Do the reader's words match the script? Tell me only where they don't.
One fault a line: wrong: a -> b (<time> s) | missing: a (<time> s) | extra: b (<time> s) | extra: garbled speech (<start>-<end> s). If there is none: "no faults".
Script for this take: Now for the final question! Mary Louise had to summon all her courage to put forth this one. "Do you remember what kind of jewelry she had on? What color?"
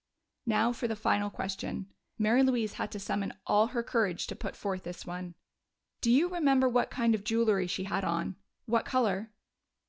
no faults